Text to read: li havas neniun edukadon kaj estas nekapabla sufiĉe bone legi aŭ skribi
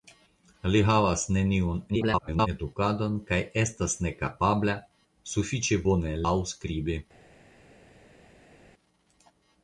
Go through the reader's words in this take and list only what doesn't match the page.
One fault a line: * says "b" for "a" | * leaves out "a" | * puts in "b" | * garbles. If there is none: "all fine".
* garbles
* leaves out "legi"